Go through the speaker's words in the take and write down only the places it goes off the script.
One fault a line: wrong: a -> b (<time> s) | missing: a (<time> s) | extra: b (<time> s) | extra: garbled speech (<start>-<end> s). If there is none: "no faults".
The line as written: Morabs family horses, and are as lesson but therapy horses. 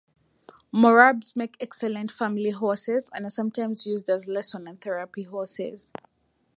extra: make excellent (1.4 s)
extra: sometimes used (3.3 s)
wrong: but -> and (4.7 s)